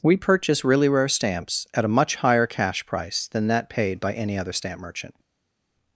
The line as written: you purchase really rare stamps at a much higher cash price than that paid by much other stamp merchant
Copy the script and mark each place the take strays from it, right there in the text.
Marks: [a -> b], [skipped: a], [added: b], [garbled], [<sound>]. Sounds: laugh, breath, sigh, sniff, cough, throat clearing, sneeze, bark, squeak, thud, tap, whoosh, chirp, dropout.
[you -> we] purchase really rare stamps at a much higher cash price than that paid by [much -> any] other stamp merchant